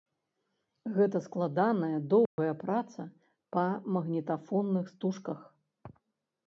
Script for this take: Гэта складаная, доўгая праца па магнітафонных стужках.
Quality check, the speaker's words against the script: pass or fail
pass